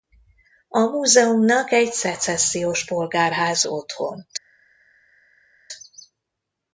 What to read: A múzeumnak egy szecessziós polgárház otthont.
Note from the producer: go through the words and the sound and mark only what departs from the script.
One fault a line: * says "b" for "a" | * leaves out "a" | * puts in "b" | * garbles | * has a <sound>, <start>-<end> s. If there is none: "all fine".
all fine